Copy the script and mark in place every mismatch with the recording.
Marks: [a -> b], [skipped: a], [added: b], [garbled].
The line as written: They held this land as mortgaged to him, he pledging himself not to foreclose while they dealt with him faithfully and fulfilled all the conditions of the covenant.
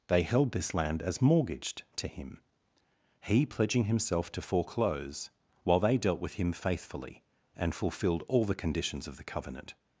They held this land as mortgaged to him, he pledging himself [skipped: not] to foreclose while they dealt with him faithfully and fulfilled all the conditions of the covenant.